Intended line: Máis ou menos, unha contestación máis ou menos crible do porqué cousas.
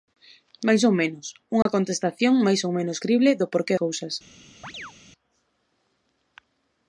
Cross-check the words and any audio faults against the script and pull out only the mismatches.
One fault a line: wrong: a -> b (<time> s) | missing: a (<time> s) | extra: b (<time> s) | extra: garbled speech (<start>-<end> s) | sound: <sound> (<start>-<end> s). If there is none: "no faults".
sound: dropout (1.6-1.7 s)
sound: chirp (4.6-4.9 s)